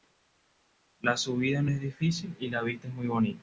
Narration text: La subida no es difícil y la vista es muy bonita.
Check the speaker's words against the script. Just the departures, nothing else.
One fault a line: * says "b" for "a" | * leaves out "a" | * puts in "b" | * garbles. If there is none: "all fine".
all fine